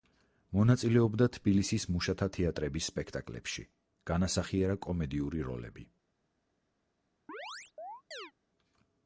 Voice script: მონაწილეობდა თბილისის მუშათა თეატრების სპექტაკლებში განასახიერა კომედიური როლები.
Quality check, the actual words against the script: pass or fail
pass